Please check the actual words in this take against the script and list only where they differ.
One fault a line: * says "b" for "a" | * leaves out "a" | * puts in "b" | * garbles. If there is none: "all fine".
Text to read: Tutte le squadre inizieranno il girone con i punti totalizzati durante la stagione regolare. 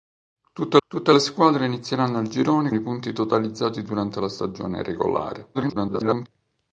* puts in "tutte"
* leaves out "con"
* garbles